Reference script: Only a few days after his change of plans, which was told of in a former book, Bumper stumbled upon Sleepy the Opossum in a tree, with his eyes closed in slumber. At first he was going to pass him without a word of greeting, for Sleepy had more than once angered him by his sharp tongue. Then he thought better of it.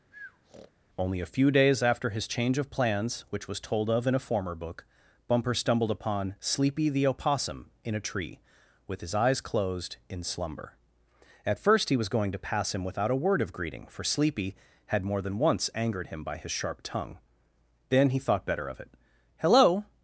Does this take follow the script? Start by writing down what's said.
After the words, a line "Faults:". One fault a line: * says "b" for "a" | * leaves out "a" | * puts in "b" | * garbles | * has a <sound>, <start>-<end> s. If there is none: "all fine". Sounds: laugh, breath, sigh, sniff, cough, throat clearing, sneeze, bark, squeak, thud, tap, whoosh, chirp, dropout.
Only a few days after his change of plans, which was told of in a former book, Bumper stumbled upon Sleepy the Opossum in a tree, with his eyes closed in slumber. At first he was going to pass him without a word of greeting, for Sleepy had more than once angered him by his sharp tongue. Then he thought better of it. "Hello
Faults:
* has a breath, 0.1-0.7 s
* puts in "Hello"